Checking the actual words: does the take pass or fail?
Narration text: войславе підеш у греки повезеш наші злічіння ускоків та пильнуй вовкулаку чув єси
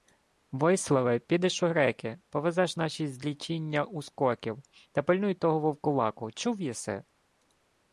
fail